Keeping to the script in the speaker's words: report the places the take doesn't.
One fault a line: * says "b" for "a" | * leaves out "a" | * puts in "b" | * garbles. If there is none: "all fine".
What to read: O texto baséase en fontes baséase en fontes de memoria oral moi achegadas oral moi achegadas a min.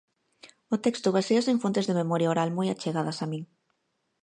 * leaves out "baséase en fontes"
* leaves out "oral moi achegadas"